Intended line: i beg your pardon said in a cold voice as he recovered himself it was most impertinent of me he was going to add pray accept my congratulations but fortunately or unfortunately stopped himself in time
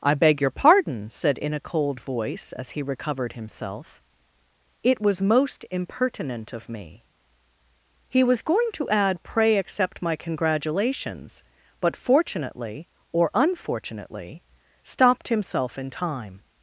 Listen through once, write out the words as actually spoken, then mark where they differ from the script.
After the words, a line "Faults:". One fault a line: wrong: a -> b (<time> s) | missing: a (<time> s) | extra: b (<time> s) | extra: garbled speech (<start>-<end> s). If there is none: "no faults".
i beg your pardon said in a cold voice as he recovered himself it was most impertinent of me he was going to add pray accept my congratulations but fortunately or unfortunately stopped himself in time
Faults:
no faults